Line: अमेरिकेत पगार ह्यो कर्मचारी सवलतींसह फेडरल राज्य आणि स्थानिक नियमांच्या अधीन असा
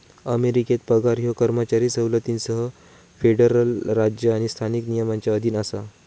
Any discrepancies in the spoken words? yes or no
no